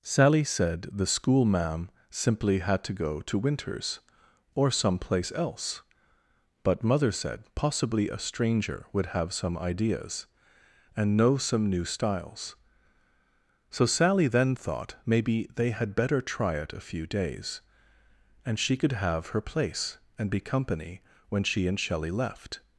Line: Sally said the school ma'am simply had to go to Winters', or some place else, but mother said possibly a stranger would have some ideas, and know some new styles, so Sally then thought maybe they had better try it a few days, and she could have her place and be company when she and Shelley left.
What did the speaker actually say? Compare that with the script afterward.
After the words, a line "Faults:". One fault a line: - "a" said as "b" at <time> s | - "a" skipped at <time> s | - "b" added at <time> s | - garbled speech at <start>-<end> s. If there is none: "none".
Sally said the school ma'am simply had to go to Winters', or some place else, but mother said possibly a stranger would have some ideas, and know some new styles, so Sally then thought maybe they had better try it a few days, and she could have her place and be company when she and Shelley left.
Faults:
none